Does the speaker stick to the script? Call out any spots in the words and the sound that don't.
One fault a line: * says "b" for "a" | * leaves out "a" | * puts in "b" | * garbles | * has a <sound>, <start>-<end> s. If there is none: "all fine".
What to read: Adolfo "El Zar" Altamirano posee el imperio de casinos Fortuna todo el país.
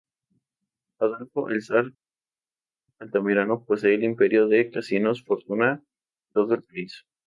all fine